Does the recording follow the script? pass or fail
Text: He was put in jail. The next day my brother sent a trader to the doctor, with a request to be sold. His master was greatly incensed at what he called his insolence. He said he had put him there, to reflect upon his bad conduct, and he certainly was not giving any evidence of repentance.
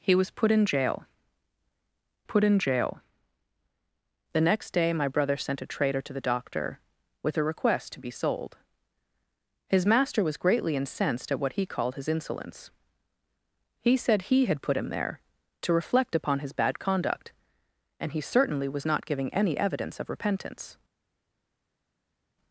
fail